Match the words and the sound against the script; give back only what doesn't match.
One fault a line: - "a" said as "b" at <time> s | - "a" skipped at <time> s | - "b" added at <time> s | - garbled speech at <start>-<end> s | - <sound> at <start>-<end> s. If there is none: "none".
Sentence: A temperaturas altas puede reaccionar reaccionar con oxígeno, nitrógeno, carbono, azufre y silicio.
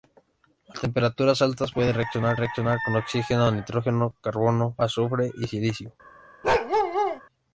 - bark at 6.4-7.2 s